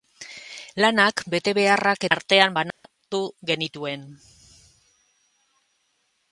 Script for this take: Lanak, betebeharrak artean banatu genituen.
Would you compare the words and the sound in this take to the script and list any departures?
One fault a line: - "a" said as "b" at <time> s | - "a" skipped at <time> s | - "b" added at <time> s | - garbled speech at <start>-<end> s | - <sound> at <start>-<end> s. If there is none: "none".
- dropout at 2.7-2.8 s